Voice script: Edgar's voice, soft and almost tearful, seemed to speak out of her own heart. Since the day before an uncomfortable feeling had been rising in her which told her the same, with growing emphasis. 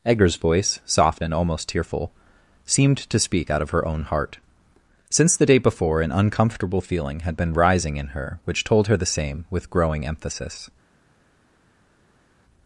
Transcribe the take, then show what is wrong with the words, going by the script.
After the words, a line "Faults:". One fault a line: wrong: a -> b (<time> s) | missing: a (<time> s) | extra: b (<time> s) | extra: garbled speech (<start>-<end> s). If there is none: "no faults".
Edgar's voice, soft and almost tearful, seemed to speak out of her own heart. Since the day before an uncomfortable feeling had been rising in her which told her the same, with growing emphasis.
Faults:
no faults